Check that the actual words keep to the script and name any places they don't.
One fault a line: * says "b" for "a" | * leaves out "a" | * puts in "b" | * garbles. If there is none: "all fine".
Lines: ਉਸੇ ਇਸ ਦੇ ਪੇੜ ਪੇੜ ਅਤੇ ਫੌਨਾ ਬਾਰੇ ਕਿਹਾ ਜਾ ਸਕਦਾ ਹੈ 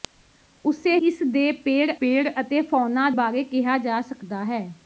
all fine